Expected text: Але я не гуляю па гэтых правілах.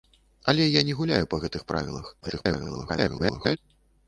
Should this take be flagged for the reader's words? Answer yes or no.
yes